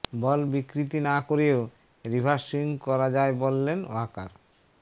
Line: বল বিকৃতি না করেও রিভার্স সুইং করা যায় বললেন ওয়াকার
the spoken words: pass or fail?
pass